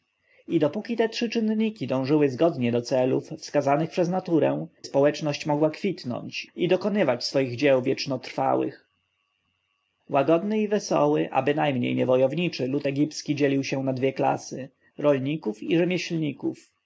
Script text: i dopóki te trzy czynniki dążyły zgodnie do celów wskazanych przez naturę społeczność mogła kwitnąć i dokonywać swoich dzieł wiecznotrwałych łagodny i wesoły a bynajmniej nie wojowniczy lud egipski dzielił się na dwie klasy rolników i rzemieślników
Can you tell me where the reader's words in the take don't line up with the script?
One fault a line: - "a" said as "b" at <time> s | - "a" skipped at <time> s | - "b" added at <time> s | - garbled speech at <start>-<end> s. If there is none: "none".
none